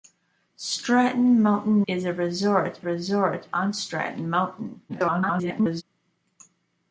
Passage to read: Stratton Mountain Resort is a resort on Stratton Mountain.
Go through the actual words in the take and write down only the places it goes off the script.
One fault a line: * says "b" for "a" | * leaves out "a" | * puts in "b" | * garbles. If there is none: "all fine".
* leaves out "Resort"
* puts in "resort"
* garbles